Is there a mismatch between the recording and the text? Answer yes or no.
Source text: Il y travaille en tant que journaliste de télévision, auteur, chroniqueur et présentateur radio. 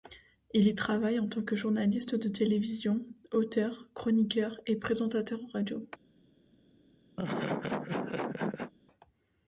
no